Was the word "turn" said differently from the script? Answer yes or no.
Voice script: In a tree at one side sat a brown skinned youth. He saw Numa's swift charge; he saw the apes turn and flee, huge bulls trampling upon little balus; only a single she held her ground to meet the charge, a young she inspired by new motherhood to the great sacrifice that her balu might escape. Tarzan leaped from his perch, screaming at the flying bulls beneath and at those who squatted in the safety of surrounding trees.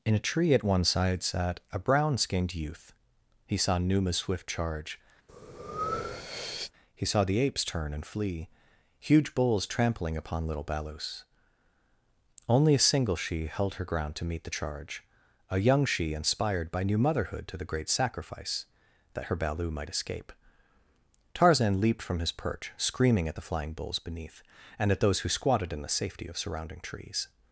no